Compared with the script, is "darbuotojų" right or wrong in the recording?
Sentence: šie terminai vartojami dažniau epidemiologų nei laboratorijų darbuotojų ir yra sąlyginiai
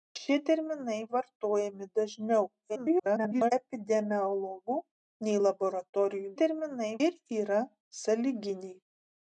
wrong